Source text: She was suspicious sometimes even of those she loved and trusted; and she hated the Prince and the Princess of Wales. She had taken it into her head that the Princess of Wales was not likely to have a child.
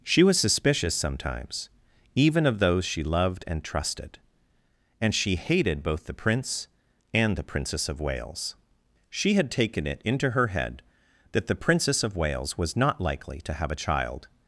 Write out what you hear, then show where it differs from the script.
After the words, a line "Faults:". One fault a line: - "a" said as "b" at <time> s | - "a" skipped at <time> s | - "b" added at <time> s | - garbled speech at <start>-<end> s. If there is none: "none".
She was suspicious sometimes even of those she loved and trusted; and she hated both the Prince and the Princess of Wales. She had taken it into her head that the Princess of Wales was not likely to have a child.
Faults:
- "both" added at 5.8 s